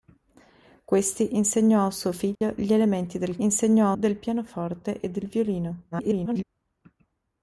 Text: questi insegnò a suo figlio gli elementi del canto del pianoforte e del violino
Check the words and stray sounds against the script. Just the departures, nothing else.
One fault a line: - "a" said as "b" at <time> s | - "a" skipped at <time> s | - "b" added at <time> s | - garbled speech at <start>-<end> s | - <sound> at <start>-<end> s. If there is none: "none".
- dropout at 2.3-2.4 s
- "canto" said as "insegnò" at 3.4 s
- garbled speech at 5.9-6.4 s